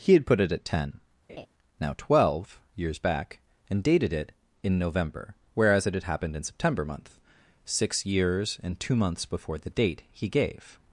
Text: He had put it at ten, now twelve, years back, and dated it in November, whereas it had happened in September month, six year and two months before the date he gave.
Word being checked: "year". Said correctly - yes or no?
no